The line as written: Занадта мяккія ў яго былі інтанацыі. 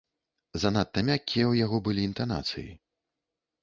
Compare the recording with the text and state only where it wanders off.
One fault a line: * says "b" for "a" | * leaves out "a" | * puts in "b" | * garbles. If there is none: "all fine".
all fine